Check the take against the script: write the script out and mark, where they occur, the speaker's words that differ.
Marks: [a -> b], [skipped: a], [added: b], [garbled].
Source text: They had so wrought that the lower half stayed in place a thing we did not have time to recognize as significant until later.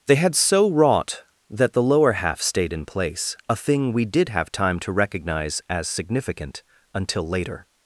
They had so wrought that the lower half stayed in place a thing we did [skipped: not] have time to recognize as significant until later.